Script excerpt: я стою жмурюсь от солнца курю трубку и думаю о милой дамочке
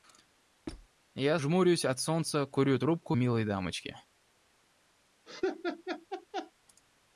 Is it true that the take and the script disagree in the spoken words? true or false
true